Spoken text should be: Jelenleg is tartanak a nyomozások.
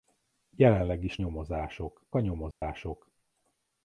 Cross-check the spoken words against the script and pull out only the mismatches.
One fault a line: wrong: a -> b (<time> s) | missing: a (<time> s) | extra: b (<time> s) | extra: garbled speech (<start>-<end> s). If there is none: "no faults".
wrong: tartanak -> nyomozások (1.2 s)